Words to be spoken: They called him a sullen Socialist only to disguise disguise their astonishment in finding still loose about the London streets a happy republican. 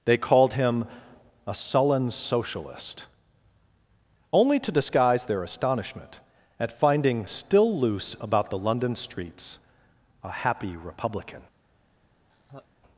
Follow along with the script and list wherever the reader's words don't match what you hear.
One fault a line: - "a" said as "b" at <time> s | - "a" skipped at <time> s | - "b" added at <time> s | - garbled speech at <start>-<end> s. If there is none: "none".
- "disguise" skipped at 5.2 s
- "in" said as "at" at 6.6 s